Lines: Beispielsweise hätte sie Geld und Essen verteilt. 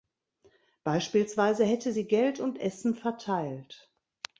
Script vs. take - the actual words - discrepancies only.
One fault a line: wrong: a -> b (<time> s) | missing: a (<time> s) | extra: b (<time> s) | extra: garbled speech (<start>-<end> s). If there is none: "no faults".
no faults